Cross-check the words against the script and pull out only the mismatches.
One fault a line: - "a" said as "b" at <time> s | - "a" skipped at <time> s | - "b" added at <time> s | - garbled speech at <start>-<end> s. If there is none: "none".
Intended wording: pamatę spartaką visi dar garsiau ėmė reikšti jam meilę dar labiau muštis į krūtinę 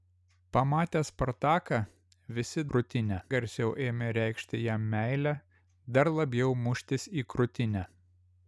- "dar" said as "krūtinę" at 2.7 s